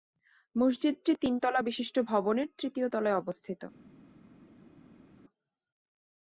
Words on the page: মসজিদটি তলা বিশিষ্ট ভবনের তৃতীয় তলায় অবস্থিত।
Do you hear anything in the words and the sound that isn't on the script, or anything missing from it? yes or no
yes